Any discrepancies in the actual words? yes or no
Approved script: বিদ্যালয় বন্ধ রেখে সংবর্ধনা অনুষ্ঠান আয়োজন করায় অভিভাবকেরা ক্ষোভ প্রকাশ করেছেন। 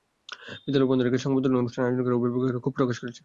no